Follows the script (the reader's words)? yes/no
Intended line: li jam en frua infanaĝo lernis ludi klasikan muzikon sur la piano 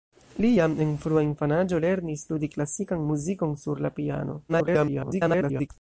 no